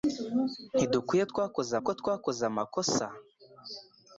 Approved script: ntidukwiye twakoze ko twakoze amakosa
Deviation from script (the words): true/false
false